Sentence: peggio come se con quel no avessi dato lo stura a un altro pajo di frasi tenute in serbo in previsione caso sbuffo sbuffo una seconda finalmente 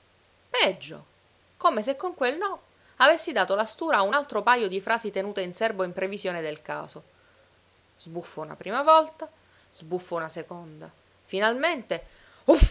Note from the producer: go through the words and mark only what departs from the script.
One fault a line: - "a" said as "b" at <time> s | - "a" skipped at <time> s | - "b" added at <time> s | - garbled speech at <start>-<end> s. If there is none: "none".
- "lo" said as "la" at 3.5 s
- "del" added at 6.4 s
- "una prima volta" added at 8.4 s